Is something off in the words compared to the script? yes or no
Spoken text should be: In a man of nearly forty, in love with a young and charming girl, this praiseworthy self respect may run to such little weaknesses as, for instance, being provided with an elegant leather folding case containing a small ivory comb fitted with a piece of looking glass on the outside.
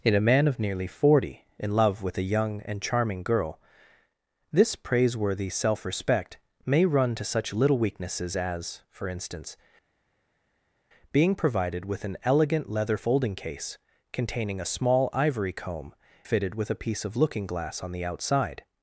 no